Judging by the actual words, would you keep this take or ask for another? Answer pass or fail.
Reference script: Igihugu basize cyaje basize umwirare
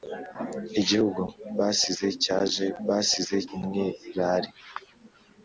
pass